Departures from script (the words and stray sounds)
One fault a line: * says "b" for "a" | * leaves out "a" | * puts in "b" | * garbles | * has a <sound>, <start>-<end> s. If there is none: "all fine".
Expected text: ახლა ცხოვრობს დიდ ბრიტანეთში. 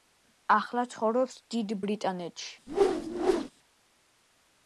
* has a whoosh, 2.7-3.5 s